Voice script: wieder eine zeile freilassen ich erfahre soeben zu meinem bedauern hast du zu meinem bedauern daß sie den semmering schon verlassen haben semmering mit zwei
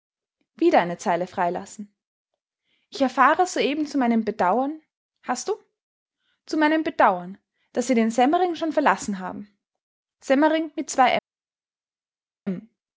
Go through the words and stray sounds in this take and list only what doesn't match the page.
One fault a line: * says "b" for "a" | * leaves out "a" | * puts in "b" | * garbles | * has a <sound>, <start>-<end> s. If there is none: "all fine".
all fine